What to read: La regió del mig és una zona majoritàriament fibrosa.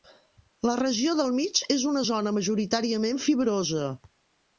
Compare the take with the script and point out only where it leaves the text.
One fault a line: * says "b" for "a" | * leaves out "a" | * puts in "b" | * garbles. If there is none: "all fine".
all fine